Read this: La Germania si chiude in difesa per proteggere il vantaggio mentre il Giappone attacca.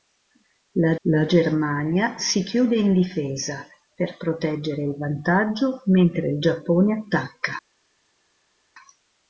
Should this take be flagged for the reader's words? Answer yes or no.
yes